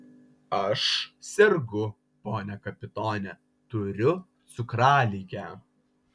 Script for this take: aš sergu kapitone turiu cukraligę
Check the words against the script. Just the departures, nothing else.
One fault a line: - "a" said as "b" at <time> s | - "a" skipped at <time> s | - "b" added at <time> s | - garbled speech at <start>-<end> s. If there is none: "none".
- "pone" added at 2.2 s